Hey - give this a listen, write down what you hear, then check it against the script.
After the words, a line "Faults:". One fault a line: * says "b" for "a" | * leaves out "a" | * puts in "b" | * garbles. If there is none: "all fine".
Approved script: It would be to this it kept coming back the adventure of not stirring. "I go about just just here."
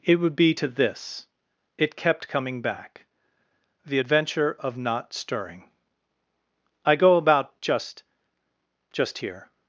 It would be to this it kept coming back the adventure of not stirring. "I go about just just here."
Faults:
all fine